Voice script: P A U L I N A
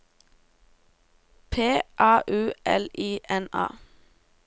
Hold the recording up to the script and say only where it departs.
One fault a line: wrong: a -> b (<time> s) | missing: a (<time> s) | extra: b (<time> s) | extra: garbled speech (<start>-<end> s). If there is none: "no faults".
no faults